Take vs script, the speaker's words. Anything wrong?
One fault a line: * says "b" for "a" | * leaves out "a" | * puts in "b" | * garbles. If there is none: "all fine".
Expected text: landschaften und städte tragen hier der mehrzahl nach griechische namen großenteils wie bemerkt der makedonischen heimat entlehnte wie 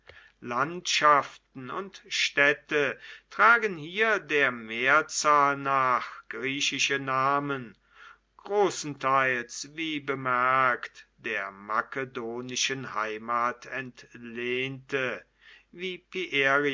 all fine